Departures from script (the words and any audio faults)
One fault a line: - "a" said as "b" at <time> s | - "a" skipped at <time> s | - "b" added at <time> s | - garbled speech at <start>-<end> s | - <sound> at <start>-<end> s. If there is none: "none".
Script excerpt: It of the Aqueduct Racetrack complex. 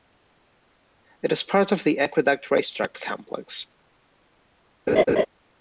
- "is part" added at 1.3 s
- laugh at 4.9-5.3 s